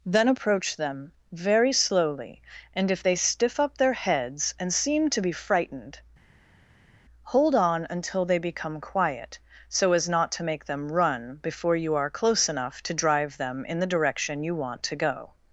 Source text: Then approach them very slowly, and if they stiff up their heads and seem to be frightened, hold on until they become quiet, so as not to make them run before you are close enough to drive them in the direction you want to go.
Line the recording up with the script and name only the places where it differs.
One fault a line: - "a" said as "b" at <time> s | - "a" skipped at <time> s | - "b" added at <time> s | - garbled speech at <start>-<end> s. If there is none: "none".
none